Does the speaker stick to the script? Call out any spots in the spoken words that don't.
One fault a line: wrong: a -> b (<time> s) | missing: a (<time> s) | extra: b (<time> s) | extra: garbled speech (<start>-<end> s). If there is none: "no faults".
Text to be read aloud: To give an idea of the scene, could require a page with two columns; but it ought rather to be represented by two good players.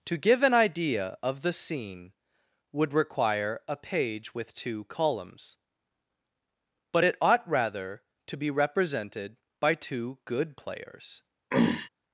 wrong: could -> would (2.7 s)